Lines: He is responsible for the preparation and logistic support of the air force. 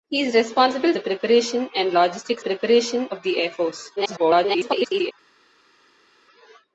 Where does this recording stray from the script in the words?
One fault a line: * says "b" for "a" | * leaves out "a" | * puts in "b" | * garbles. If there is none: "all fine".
* leaves out "for"
* says "preparation" for "support"
* garbles